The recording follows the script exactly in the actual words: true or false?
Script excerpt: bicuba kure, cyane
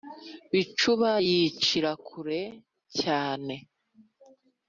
false